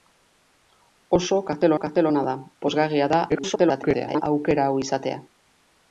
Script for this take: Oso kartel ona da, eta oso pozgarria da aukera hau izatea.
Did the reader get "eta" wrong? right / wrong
wrong